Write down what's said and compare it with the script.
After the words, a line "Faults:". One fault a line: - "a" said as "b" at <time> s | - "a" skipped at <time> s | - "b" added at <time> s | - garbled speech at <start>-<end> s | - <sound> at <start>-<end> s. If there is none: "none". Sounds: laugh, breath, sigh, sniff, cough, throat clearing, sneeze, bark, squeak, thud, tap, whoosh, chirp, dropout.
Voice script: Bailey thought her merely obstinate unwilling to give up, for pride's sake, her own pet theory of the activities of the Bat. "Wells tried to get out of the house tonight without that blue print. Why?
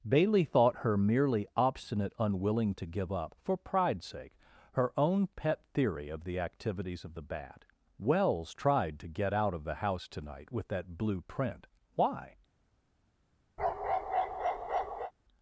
Bailey thought her merely obstinate unwilling to give up, for pride's sake, her own pet theory of the activities of the Bat. "Wells tried to get out of the house tonight with that blue print. Why?
Faults:
- "without" said as "with" at 10.5 s
- bark at 13.6-15.1 s